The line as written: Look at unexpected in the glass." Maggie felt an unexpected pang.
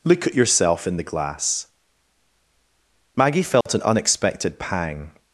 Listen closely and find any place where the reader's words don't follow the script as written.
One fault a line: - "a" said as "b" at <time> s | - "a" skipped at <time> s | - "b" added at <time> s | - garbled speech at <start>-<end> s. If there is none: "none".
- "unexpected" said as "yourself" at 0.3 s